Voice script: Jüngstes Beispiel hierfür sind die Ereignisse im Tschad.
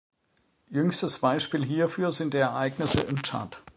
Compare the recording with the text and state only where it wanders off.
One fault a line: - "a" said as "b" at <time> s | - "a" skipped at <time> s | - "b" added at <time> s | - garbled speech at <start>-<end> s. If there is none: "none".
none